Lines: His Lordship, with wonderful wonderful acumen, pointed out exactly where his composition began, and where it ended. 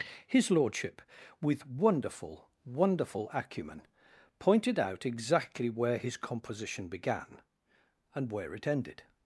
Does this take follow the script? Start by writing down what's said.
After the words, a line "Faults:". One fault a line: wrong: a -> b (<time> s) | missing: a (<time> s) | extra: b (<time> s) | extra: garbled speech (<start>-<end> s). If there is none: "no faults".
His Lordship, with wonderful wonderful acumen, pointed out exactly where his composition began, and where it ended.
Faults:
no faults